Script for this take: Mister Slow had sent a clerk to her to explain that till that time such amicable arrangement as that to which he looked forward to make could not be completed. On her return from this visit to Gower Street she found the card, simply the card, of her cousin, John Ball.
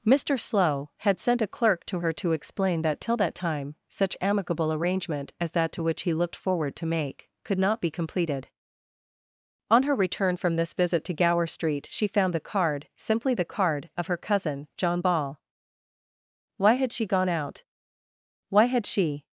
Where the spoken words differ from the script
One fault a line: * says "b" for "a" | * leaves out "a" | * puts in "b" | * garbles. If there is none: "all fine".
* puts in "Why had she gone out Why had she"